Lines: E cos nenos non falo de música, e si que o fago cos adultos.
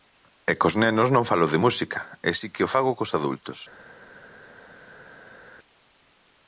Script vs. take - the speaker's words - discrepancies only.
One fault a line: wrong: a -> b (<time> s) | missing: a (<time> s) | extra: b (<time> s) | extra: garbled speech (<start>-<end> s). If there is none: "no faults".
no faults